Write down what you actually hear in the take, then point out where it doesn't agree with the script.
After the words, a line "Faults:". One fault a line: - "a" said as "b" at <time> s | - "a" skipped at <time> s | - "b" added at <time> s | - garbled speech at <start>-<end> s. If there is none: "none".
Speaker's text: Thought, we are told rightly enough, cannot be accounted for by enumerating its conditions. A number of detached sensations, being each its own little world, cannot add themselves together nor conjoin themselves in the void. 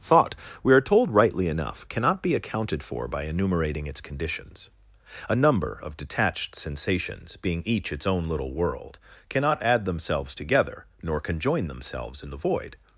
Thought, we are told rightly enough, cannot be accounted for by enumerating its conditions. A number of detached sensations, being each its own little world, cannot add themselves together nor conjoin themselves in the void.
Faults:
none